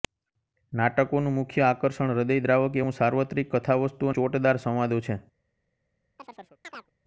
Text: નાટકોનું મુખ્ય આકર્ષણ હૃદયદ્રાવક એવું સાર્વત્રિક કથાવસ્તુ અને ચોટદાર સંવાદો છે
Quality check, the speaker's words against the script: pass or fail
fail